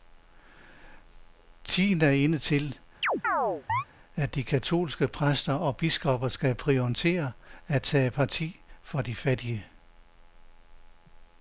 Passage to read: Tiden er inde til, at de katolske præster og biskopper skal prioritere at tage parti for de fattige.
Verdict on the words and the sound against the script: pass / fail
fail